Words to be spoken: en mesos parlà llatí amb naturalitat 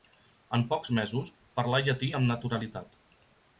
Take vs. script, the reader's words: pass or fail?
fail